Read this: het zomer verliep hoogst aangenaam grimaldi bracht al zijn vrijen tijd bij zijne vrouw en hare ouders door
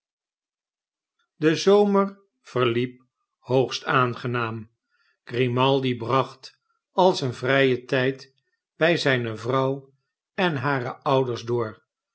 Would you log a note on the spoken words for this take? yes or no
yes